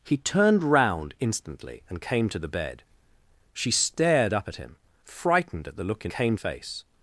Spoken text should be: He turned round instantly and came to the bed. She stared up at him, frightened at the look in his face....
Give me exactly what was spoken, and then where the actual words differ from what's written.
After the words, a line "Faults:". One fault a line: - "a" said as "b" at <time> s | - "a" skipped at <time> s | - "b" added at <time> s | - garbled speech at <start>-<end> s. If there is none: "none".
He turned round instantly and came to the bed. She stared up at him, frightened at the look in came face....
Faults:
- "his" said as "came" at 6.1 s